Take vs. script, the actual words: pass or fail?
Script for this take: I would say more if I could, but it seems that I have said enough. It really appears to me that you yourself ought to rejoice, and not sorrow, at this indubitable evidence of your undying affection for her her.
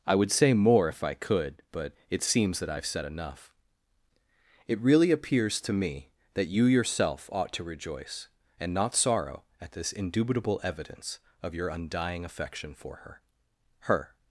pass